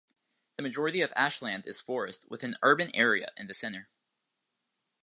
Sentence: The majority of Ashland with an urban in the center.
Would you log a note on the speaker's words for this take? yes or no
yes